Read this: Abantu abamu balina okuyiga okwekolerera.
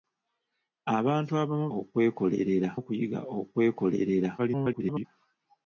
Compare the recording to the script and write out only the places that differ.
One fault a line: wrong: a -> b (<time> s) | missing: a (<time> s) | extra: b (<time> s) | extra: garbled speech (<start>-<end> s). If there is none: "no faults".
wrong: balina -> okwekolerera (1.8 s)
extra: garbled speech (4.4-5.1 s)